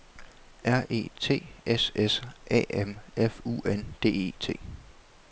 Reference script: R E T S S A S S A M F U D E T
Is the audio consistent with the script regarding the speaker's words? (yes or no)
no